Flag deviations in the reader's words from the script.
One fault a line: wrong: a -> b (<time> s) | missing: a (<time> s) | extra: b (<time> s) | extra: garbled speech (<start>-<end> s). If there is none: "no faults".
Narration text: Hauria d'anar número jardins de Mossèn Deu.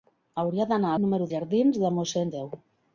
no faults